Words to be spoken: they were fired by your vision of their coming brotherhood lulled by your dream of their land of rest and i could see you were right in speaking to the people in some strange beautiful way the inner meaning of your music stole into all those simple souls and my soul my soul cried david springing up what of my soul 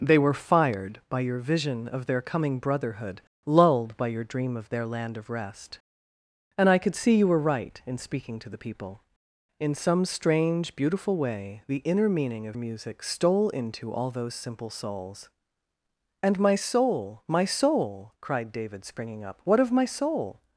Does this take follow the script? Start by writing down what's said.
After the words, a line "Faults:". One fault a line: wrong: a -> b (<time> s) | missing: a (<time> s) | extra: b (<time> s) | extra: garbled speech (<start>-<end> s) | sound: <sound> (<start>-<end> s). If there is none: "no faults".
they were fired by your vision of their coming brotherhood lulled by your dream of their land of rest and i could see you were right in speaking to the people in some strange beautiful way the inner meaning of music stole into all those simple souls and my soul my soul cried david springing up what of my soul
Faults:
missing: your (12.6 s)